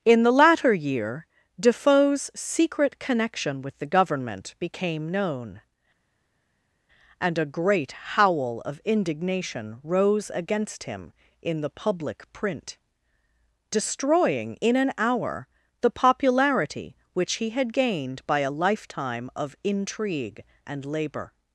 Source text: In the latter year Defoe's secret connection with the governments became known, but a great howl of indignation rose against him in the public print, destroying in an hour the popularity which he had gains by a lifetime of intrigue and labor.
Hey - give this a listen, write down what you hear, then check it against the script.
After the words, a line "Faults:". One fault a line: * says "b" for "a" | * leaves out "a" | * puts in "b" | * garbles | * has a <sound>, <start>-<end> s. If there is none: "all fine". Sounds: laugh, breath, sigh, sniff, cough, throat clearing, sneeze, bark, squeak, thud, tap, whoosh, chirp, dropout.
In the latter year Defoe's secret connection with the government became known, and a great howl of indignation rose against him in the public print, destroying in an hour the popularity which he had gained by a lifetime of intrigue and labor.
Faults:
* says "government" for "governments"
* says "and" for "but"
* says "gained" for "gains"